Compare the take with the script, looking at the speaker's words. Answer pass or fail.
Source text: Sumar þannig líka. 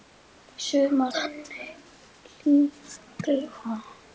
pass